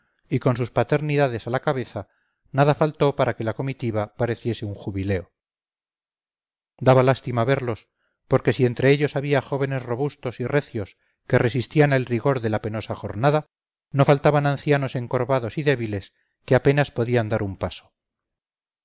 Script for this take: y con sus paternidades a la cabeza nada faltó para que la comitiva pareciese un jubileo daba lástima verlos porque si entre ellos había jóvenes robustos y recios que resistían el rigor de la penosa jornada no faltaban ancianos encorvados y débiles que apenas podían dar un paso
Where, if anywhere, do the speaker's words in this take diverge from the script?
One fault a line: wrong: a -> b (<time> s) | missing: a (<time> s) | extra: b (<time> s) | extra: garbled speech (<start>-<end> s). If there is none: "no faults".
no faults